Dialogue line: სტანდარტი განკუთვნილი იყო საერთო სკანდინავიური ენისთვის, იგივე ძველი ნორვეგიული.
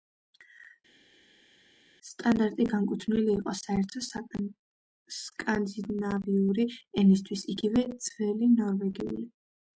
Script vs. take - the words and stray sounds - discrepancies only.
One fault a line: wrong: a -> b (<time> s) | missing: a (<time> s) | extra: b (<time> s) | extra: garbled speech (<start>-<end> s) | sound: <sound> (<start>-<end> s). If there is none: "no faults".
no faults